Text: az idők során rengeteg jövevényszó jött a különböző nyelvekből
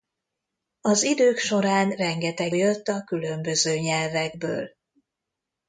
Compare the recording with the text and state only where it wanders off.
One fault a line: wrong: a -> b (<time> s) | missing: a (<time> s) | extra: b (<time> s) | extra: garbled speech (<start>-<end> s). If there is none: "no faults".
missing: jövevényszó (2.5 s)